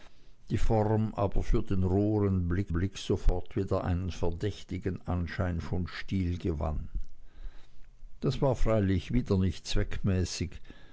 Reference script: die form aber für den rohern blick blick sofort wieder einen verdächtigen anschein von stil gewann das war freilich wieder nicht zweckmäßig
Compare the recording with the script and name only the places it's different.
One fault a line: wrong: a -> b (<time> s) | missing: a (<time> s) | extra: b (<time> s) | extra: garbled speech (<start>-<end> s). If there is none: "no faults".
no faults